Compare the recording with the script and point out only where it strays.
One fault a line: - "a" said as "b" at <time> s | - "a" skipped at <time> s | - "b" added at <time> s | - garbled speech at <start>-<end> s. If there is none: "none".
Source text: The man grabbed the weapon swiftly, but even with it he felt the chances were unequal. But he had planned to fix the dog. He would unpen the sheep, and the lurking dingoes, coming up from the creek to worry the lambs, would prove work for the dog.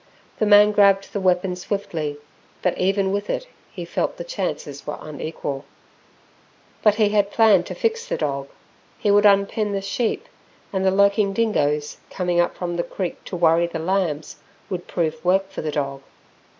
none